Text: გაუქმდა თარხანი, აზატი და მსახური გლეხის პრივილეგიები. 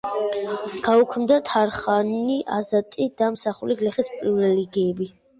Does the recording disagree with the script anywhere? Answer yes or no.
no